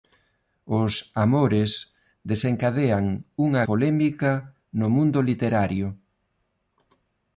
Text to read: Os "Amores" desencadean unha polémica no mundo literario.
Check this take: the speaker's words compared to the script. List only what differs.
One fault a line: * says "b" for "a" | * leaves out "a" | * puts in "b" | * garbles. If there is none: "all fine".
all fine